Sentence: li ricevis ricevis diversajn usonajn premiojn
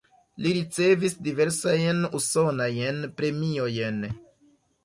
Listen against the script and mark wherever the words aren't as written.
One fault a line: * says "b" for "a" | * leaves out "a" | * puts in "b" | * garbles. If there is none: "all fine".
* leaves out "ricevis"